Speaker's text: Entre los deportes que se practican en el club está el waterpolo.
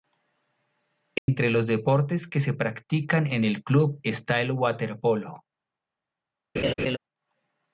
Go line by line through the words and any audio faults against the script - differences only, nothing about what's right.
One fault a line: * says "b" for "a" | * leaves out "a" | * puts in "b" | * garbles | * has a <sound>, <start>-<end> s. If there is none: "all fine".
* has a dropout, 1.2-1.3 s
* has a laugh, 6.6-7.0 s